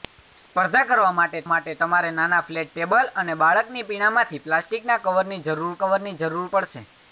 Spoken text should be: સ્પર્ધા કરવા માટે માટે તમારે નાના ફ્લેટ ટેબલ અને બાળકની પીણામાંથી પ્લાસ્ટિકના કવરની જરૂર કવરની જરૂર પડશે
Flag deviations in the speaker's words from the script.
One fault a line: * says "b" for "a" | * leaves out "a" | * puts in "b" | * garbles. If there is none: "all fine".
all fine